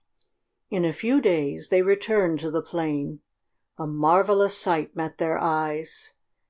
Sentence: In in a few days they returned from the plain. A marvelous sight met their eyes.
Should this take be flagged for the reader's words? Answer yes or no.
yes